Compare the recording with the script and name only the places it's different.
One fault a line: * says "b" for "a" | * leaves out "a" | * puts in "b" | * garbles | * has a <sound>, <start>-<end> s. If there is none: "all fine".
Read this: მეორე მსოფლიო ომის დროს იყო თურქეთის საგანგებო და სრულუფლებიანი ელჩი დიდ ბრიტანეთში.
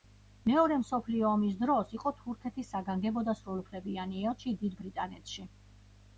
all fine